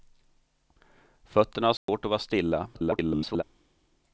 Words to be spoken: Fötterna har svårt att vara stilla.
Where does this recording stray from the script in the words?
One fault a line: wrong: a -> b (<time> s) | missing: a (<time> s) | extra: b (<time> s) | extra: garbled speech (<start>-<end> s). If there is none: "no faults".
extra: garbled speech (2.7-3.4 s)